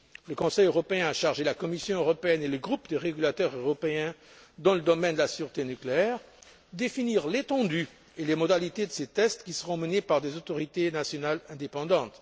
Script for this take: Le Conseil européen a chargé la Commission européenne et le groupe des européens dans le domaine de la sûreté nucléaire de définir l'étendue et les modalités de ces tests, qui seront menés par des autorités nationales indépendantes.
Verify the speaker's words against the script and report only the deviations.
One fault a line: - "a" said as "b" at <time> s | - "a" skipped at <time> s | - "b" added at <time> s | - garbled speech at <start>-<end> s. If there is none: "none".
- "régulateurs" added at 3.0 s